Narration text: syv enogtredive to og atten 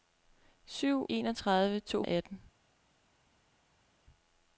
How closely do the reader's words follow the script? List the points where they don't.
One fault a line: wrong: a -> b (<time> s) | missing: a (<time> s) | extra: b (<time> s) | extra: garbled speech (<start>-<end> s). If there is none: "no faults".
no faults